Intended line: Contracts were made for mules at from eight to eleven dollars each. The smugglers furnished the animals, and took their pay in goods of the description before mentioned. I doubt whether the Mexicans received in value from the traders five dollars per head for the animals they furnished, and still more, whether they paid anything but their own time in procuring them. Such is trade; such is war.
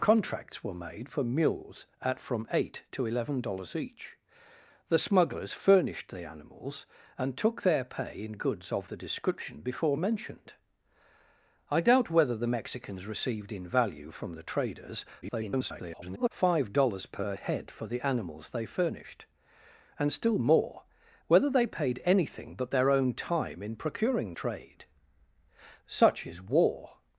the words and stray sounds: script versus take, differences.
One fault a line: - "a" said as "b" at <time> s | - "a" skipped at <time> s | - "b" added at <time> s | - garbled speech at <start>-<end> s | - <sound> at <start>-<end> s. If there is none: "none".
- garbled speech at 15.2-16.3 s
- "them Such is" skipped at 24.3 s